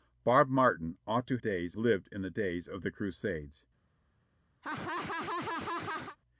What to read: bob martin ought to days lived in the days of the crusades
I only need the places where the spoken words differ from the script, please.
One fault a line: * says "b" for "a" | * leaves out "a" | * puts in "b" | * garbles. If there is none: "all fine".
all fine